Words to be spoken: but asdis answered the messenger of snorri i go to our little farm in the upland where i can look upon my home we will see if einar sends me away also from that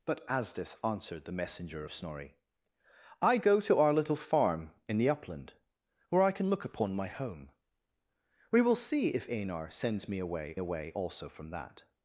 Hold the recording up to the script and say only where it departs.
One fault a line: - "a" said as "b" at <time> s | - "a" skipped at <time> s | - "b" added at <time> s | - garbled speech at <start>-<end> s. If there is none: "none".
- "away" added at 10.6 s